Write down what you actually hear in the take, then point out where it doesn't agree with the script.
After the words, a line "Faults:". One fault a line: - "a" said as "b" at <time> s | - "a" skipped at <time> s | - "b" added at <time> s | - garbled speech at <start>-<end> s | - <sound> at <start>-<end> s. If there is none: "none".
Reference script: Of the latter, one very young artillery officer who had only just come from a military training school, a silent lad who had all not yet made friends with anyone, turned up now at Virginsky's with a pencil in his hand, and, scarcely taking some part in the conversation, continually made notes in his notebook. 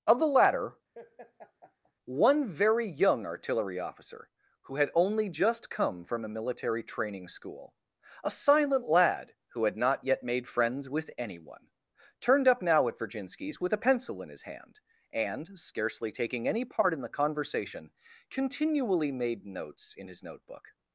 Of the latter, one very young artillery officer who had only just come from a military training school, a silent lad who had not yet made friends with anyone, turned up now at Virginsky's with a pencil in his hand, and, scarcely taking any part in the conversation, continually made notes in his notebook.
Faults:
- laugh at 0.9-1.9 s
- "all" skipped at 9.8 s
- "some" said as "any" at 16.5 s